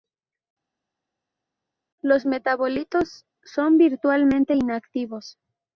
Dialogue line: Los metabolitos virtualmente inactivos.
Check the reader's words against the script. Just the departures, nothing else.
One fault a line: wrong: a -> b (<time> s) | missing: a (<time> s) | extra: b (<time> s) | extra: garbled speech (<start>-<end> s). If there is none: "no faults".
extra: son (3.4 s)